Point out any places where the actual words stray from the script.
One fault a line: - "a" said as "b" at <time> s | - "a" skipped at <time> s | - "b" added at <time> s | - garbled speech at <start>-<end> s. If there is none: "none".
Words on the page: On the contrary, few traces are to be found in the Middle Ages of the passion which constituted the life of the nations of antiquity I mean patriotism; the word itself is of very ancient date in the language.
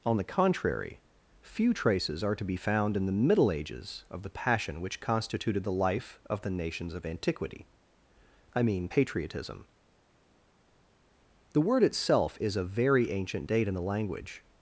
none